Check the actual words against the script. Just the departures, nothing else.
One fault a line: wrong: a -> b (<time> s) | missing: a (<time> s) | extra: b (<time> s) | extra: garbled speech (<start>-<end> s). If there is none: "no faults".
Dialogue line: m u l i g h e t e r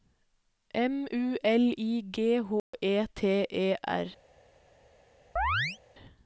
no faults